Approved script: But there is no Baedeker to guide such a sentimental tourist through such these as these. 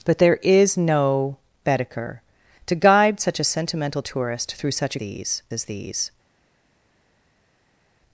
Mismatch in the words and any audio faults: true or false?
false